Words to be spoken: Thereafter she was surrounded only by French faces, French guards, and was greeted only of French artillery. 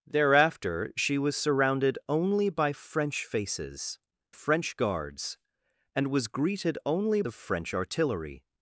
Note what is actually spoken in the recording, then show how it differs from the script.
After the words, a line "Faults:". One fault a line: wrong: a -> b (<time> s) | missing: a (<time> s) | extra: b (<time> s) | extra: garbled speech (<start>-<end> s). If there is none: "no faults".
Thereafter she was surrounded only by French faces, French guards, and was greeted only of French artillery.
Faults:
no faults